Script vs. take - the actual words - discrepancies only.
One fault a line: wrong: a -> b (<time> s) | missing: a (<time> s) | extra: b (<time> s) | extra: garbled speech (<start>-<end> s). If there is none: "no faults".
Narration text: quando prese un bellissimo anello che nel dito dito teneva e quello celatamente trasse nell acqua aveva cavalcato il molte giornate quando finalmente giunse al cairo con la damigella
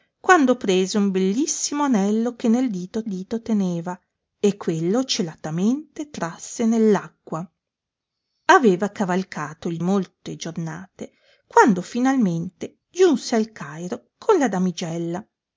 no faults